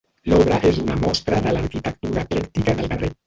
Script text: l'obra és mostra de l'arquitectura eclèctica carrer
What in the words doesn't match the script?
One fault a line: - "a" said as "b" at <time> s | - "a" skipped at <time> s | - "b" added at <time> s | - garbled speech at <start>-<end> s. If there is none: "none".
- "una" added at 0.8 s
- "del" added at 2.8 s